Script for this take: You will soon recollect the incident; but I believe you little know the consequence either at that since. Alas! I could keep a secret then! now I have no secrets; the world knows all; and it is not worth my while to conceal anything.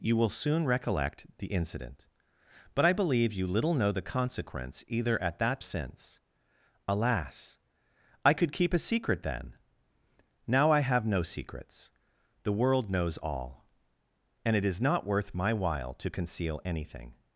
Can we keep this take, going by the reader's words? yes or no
yes